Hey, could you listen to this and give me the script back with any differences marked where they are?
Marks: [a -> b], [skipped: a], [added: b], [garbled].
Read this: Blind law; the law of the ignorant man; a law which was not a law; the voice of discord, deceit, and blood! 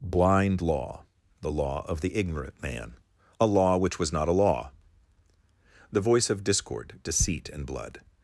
Blind law; the law of the ignorant man; a law which was not a law; the voice of discord, deceit, and blood!